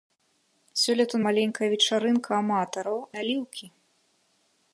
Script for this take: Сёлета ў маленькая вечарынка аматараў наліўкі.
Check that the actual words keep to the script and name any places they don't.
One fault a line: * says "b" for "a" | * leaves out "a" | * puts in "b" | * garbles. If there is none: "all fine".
all fine